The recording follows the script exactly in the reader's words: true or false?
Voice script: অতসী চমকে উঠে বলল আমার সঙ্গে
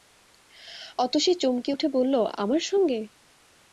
true